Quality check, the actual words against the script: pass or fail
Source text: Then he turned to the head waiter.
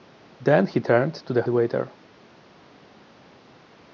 fail